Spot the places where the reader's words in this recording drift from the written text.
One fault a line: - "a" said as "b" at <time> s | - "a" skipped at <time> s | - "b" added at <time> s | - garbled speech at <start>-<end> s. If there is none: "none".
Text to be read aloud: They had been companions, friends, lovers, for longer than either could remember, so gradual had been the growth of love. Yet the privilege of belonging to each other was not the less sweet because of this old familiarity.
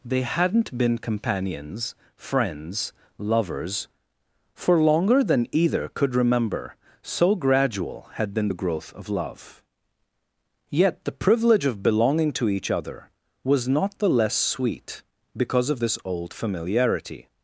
- "had" said as "hadn't" at 0.2 s